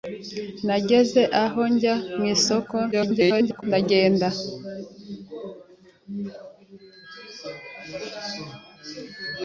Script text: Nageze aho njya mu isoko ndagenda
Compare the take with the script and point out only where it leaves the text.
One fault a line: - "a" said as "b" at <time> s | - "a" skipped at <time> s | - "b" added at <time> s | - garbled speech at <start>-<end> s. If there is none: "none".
- garbled speech at 2.9-3.6 s